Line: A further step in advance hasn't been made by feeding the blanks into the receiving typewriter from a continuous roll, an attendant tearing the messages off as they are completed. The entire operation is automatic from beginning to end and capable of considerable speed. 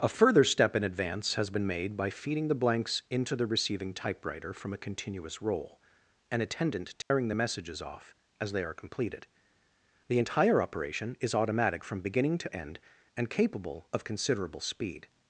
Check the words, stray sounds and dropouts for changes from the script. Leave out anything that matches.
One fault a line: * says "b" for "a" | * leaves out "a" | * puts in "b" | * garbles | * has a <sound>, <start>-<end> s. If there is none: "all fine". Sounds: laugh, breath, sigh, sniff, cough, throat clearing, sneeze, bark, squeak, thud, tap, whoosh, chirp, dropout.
* says "has" for "hasn't"
* has a dropout, 7.0-7.1 s